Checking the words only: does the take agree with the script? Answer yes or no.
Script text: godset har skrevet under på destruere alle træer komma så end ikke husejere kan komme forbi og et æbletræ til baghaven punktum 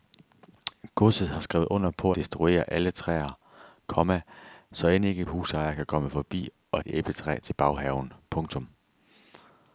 yes